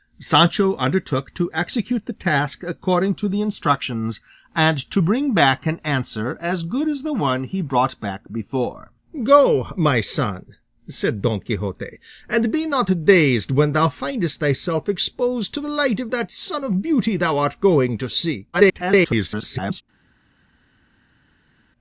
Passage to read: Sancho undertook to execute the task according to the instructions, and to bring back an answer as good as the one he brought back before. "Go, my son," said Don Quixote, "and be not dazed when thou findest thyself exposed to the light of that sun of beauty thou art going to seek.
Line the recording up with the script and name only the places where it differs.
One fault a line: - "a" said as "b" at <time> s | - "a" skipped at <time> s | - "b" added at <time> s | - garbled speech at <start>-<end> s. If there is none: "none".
- garbled speech at 18.5-19.8 s